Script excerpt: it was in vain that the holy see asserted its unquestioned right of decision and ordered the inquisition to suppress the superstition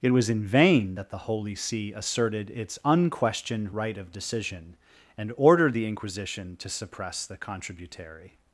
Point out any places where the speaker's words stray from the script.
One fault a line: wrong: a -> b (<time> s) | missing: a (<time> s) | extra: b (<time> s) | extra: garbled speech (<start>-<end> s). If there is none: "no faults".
wrong: superstition -> contributary (7.4 s)